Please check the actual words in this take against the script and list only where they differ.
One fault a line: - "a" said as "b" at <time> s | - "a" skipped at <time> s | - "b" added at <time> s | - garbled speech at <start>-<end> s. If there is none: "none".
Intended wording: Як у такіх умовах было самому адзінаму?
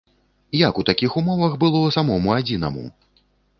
none